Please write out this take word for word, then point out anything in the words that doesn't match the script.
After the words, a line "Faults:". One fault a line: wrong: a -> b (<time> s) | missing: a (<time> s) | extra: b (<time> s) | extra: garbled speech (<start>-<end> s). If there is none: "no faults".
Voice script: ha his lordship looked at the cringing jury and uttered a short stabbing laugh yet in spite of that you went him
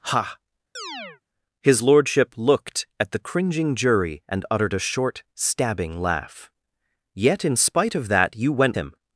ha his lordship looked at the cringing jury and uttered a short stabbing laugh yet in spite of that you went him
Faults:
no faults